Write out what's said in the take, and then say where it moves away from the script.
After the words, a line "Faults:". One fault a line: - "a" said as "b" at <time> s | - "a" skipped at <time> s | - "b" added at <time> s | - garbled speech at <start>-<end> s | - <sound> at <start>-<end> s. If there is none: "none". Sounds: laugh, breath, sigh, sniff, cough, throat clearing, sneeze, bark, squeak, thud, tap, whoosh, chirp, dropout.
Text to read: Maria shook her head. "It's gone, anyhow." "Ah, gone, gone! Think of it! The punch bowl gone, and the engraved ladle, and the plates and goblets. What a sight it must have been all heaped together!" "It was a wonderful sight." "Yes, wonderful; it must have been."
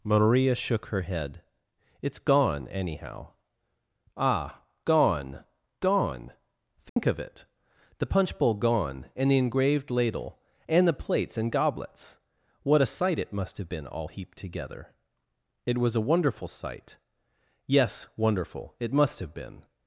Maria shook her head. "It's gone, anyhow." "Ah, gone, gone! Think of it! The punch bowl gone, and the engraved ladle, and the plates and goblets. What a sight it must have been all heaped together!" "It was a wonderful sight." "Yes, wonderful; it must have been."
Faults:
- dropout at 6.9-7.0 s